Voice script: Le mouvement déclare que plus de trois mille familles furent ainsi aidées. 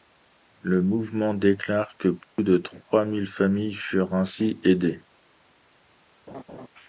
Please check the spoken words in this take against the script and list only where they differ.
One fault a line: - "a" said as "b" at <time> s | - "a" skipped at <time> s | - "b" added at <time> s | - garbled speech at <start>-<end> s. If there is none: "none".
none